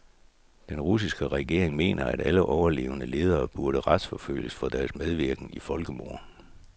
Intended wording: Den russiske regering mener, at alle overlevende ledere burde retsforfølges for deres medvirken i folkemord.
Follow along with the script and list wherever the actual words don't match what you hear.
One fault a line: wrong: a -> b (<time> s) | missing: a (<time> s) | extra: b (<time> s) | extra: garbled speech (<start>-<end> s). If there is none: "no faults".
no faults